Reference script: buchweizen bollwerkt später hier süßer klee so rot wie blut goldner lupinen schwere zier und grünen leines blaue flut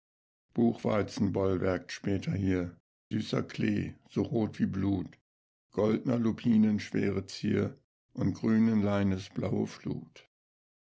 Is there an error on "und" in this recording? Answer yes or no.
no